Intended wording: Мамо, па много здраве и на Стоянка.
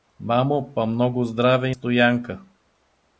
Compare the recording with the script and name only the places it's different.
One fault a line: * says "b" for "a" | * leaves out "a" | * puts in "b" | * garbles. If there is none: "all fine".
* leaves out "на"